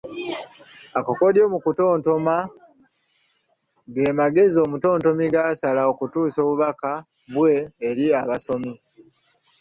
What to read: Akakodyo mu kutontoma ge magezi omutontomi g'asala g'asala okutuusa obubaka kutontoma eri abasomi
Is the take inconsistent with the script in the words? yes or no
yes